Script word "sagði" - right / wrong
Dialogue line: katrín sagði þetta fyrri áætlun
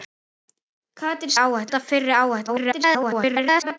wrong